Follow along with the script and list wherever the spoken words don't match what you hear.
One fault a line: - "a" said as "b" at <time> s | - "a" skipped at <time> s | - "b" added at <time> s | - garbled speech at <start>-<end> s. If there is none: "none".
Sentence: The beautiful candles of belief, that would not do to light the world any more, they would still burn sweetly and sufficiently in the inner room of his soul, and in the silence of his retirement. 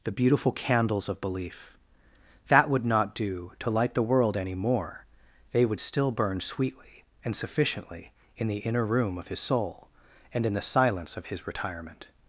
none